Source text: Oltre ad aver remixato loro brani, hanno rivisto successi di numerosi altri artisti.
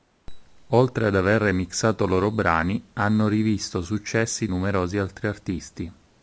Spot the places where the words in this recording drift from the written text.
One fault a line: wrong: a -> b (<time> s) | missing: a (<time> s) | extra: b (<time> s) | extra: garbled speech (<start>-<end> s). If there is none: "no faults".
missing: di (4.5 s)